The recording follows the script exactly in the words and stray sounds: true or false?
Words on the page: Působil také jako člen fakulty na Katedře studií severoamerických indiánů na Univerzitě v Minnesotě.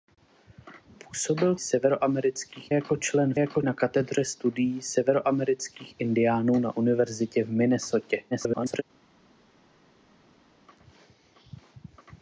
false